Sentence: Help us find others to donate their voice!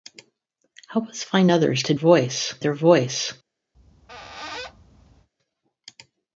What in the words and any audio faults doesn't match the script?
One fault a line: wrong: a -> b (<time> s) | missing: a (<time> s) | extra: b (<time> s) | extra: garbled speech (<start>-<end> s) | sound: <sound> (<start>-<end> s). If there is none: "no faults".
wrong: donate -> voice (1.9 s)
sound: squeak (3.7-5.3 s)